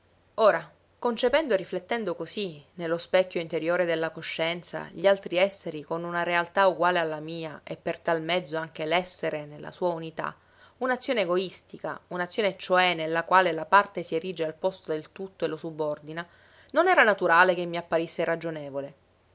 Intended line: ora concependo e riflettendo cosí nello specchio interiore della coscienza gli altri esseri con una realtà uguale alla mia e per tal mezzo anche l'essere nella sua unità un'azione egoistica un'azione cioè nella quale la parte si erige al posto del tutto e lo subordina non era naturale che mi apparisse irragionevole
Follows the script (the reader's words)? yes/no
yes